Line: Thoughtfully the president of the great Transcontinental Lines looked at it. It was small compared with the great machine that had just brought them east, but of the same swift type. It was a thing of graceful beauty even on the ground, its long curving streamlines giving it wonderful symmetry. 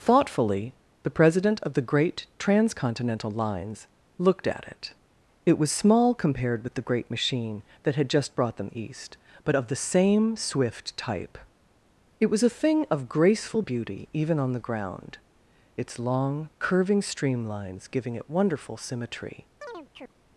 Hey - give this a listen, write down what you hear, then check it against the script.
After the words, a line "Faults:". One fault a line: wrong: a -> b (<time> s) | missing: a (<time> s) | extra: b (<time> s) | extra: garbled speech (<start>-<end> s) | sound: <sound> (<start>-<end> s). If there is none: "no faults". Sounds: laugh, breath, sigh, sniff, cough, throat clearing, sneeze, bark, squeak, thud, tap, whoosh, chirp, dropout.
Thoughtfully the president of the great Transcontinental Lines looked at it. It was small compared with the great machine that had just brought them east, but of the same swift type. It was a thing of graceful beauty even on the ground, its long curving streamlines giving it wonderful symmetry.
Faults:
sound: chirp (19.6-20.1 s)